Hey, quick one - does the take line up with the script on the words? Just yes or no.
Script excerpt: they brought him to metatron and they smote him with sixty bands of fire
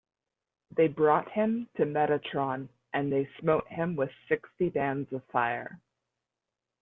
yes